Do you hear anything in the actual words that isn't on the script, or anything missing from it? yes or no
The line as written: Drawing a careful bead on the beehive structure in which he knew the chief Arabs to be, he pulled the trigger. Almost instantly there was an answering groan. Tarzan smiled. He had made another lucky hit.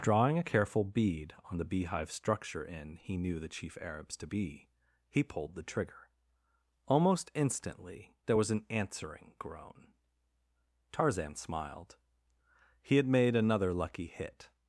yes